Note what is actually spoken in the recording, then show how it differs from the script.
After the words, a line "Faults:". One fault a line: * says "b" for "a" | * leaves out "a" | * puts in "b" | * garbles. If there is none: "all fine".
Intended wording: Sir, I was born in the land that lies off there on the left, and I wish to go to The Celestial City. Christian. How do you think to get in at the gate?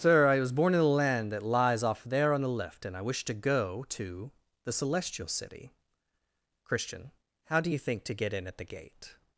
Sir, I was born in the land that lies off there on the left, and I wish to go to The Celestial City. Christian. How do you think to get in at the gate?
Faults:
all fine